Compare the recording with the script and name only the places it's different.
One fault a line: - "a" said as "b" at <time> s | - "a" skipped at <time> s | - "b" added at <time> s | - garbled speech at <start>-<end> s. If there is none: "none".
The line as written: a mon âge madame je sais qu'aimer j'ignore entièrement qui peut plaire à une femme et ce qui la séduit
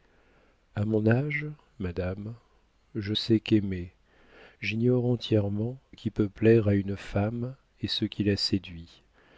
none